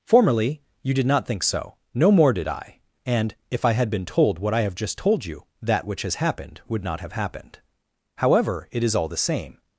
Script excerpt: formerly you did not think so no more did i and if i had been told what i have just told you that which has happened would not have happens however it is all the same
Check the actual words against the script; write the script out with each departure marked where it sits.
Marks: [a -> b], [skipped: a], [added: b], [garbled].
formerly you did not think so no more did i and if i had been told what i have just told you that which has happened would not have [happens -> happened] however it is all the same